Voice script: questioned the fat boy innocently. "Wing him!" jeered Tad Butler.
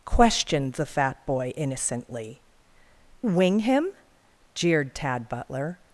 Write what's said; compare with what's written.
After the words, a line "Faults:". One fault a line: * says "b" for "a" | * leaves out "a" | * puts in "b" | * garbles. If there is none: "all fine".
questioned the fat boy innocently. "Wing him!" jeered Tad Butler.
Faults:
all fine